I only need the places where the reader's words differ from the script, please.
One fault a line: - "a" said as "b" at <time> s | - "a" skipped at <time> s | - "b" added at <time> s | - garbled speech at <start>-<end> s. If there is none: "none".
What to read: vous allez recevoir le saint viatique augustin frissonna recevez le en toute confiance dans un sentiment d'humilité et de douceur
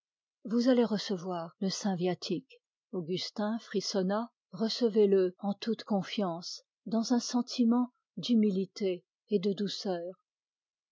none